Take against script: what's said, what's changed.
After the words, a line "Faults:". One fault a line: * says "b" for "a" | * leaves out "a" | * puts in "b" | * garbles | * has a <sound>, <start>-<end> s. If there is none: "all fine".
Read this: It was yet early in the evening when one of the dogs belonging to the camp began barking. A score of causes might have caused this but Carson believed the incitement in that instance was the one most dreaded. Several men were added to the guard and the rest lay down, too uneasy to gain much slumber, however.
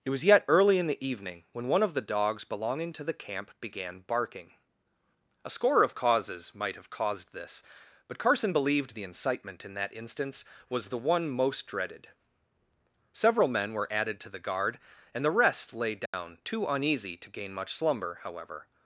It was yet early in the evening when one of the dogs belonging to the camp began barking. A score of causes might have caused this but Carson believed the incitement in that instance was the one most dreaded. Several men were added to the guard and the rest lay down, too uneasy to gain much slumber, however.
Faults:
* has a dropout, 16.1-16.1 s